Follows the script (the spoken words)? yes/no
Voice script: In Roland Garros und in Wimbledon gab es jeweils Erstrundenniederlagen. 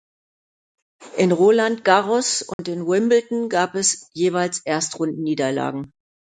yes